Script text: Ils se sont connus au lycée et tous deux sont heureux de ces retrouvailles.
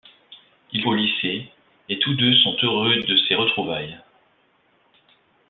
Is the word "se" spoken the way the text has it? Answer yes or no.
no